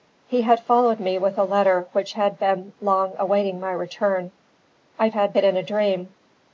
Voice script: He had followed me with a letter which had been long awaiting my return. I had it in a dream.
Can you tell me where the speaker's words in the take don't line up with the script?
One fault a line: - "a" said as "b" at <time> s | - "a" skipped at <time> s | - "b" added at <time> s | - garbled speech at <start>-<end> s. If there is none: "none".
none